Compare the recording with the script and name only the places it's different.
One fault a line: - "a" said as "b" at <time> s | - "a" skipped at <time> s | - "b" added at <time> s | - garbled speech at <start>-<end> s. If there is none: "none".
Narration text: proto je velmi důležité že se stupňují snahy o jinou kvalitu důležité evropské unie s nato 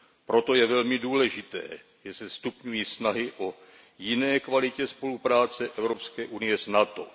- "důležité" said as "spolupráce" at 4.9 s